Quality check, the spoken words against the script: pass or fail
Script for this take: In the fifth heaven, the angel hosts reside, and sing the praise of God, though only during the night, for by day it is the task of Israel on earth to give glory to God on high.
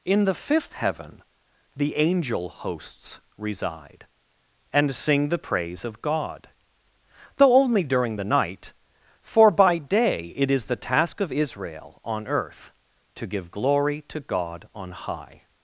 pass